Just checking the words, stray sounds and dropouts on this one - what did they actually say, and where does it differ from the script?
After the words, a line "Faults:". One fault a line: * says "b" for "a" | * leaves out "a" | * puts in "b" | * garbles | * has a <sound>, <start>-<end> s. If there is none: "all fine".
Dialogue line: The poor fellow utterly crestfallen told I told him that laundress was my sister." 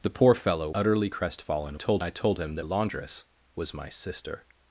The poor fellow utterly crestfallen told I told him that laundress was my sister."
Faults:
all fine